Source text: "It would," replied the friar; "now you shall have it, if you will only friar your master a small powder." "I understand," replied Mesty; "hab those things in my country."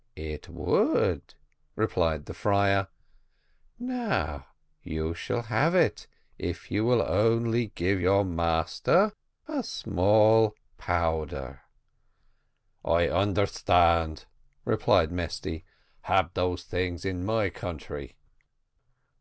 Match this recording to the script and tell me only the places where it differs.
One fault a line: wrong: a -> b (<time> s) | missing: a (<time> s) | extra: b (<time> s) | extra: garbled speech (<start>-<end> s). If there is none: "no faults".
wrong: friar -> give (7.8 s)